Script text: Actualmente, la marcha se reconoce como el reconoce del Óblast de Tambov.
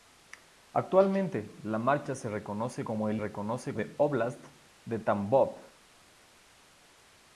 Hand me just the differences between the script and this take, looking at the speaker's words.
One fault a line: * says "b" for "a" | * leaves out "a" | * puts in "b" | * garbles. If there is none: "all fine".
all fine